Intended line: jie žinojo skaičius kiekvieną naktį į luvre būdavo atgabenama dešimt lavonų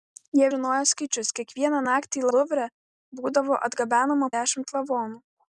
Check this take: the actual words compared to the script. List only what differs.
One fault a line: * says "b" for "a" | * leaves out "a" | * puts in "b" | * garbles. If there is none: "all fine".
all fine